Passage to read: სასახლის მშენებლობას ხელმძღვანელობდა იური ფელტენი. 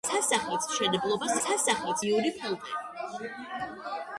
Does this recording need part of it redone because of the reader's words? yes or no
yes